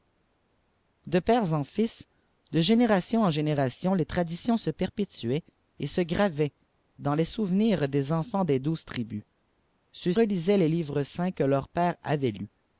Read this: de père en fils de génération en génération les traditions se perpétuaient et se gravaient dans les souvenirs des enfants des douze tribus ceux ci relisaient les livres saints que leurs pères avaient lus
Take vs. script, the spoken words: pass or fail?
fail